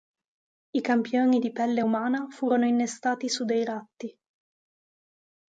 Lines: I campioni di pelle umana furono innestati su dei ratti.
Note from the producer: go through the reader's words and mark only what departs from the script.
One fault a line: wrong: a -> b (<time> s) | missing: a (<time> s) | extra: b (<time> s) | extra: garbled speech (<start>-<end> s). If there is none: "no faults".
no faults